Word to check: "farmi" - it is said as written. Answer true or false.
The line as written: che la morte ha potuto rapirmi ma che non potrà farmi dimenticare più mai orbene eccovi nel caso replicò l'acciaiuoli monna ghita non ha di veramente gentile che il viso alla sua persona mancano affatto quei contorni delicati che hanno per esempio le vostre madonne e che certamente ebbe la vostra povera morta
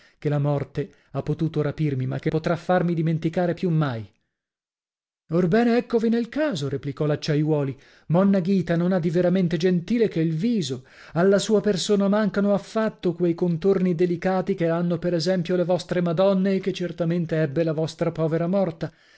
true